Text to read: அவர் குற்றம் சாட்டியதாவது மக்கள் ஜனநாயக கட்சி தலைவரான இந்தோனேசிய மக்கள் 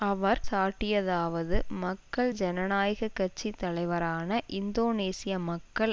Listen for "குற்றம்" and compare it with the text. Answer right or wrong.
wrong